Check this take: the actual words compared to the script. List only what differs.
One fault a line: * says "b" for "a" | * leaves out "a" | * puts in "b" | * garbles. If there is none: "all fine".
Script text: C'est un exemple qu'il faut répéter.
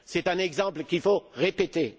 all fine